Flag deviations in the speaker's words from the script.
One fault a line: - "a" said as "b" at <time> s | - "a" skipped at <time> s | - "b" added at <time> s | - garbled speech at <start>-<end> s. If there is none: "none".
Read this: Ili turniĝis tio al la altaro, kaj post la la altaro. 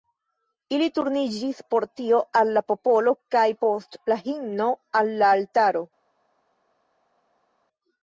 - "por" added at 1.7 s
- "altaro" said as "popolo" at 2.7 s
- "himno al" added at 4.2 s